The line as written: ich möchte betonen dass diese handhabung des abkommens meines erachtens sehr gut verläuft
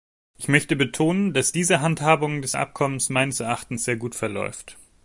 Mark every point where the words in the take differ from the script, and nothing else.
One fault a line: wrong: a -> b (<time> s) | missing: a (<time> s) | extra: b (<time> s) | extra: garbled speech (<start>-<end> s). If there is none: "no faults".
no faults